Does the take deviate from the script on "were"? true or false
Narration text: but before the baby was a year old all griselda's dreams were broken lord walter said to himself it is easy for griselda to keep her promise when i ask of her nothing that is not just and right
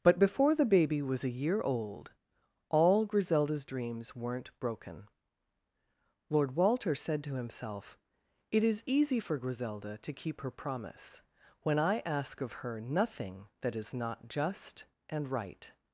true